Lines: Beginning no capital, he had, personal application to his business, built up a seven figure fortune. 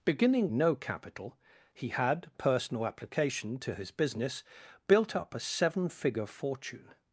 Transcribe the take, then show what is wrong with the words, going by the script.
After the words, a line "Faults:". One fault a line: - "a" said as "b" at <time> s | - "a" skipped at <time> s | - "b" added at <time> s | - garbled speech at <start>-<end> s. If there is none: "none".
Beginning no capital, he had, personal application to his business, built up a seven figure fortune.
Faults:
none